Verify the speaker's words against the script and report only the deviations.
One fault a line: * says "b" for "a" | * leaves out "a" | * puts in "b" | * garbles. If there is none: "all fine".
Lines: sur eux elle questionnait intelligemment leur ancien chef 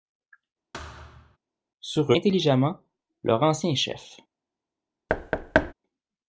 * leaves out "eux elle questionnait"